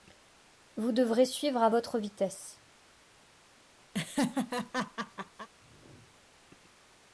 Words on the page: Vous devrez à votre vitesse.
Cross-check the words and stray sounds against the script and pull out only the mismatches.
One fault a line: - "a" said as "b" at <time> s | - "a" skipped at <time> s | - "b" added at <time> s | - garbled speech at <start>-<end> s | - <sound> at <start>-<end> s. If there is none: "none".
- "suivre" added at 1.2 s
- laugh at 3.9-5.5 s